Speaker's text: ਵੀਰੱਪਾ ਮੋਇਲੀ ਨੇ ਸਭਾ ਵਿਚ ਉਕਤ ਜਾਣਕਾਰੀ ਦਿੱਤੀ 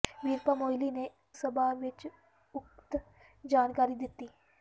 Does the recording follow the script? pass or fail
pass